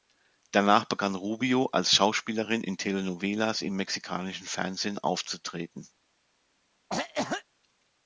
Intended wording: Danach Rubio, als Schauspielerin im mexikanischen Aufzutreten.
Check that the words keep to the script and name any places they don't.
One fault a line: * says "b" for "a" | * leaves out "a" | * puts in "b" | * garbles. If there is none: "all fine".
* puts in "begann"
* puts in "in Telenovelas"
* puts in "Fernsehen"